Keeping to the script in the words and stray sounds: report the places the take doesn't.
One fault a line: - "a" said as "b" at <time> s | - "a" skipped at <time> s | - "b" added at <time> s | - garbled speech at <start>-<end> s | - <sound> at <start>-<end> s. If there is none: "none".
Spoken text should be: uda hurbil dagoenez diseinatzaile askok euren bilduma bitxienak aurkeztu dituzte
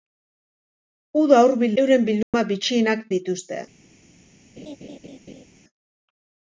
- "dagoenez diseinatzaile askok" skipped at 1.8 s
- dropout at 2.2-2.3 s
- "aurkeztu" skipped at 3.0 s
- laugh at 4.6-5.4 s